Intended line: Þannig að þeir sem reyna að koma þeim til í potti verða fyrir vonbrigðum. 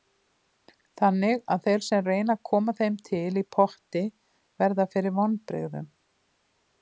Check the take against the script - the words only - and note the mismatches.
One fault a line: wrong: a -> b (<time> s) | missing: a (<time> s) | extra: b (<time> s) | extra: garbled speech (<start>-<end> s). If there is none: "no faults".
no faults